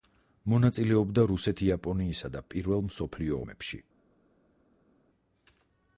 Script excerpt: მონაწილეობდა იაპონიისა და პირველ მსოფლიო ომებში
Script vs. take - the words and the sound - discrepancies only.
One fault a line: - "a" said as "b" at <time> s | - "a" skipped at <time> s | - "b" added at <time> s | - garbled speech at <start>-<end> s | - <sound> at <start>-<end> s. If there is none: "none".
- "რუსეთ" added at 1.3 s